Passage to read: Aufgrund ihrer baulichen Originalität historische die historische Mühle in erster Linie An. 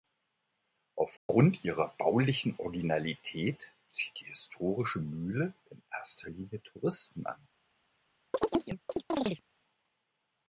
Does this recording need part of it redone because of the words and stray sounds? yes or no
yes